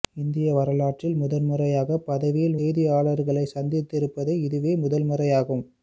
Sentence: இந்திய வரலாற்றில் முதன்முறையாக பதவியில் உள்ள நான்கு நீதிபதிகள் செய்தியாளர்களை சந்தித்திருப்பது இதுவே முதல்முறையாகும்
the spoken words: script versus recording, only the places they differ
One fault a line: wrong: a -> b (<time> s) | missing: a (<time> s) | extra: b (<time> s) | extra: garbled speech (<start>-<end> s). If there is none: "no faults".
missing: உள்ள நான்கு நீதிபதிகள் (2.6 s)